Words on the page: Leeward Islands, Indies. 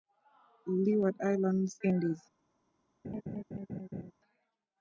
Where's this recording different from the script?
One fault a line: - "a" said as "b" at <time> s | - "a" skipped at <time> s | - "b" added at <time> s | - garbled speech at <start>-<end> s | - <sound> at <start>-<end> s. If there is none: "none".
- laugh at 3.0-4.1 s